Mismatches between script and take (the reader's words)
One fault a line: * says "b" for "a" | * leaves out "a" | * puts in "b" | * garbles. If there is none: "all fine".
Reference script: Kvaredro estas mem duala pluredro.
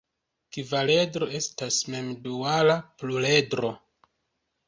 all fine